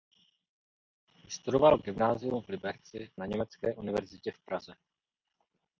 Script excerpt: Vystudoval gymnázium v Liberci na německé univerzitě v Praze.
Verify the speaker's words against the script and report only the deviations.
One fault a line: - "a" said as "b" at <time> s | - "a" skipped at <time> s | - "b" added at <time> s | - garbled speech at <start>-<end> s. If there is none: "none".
none